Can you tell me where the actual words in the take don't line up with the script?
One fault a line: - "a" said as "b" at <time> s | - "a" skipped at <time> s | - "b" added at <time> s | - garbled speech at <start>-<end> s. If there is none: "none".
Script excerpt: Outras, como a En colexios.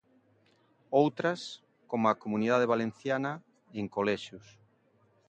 - "Comunidade Valenciana" added at 2.2 s